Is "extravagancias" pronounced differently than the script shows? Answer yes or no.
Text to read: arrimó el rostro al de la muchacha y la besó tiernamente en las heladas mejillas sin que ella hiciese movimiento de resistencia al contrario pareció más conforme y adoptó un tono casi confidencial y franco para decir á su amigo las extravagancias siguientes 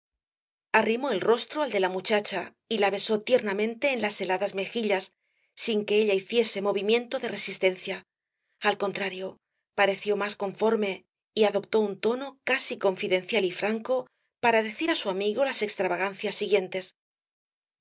no